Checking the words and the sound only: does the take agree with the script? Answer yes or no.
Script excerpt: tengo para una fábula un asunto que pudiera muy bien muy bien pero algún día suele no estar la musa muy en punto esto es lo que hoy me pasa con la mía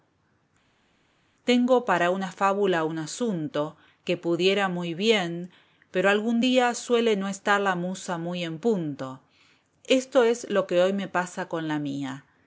no